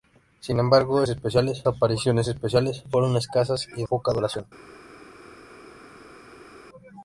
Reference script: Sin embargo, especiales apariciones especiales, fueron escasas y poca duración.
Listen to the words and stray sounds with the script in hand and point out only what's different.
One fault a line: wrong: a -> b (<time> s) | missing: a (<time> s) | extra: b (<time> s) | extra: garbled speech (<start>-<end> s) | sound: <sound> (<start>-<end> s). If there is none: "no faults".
no faults